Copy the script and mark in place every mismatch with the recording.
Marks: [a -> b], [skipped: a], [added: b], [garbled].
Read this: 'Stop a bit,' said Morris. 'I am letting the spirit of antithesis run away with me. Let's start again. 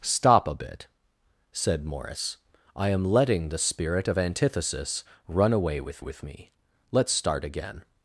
'Stop a bit,' said Morris. 'I am letting the spirit of antithesis run away with [added: with] me. Let's start again.